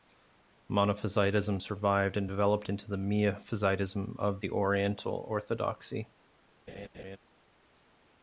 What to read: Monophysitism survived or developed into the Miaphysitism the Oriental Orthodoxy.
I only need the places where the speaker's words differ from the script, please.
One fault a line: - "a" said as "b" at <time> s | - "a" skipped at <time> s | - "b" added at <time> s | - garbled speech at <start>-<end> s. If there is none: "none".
- "or" said as "and" at 2.2 s
- "of" added at 4.2 s